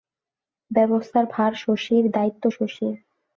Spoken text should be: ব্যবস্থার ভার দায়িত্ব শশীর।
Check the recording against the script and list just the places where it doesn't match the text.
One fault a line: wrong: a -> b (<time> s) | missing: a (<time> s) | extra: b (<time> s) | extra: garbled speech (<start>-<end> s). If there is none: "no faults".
extra: শশীর (1.6 s)